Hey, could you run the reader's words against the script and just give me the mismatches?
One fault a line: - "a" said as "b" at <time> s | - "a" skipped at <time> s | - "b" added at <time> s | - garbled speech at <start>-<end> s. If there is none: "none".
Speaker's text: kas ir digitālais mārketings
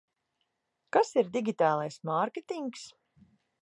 none